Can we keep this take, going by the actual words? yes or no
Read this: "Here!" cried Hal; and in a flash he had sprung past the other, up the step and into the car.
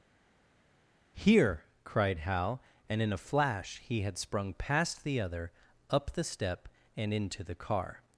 yes